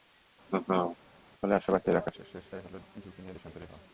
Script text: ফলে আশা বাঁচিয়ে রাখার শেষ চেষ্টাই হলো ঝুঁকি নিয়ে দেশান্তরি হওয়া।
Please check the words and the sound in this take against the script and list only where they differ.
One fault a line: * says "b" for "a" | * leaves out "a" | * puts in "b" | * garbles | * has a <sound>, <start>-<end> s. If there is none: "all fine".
* has a laugh, 0.5-1.0 s